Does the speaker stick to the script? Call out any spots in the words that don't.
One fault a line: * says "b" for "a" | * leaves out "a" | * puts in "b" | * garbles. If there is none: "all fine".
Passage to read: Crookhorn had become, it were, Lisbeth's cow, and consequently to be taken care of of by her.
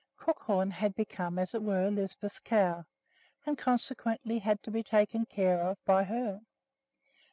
* puts in "as"
* puts in "had"
* leaves out "of"